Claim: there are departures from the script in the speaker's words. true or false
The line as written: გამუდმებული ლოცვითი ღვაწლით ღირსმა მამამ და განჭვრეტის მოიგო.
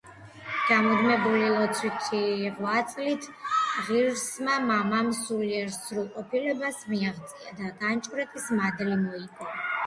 true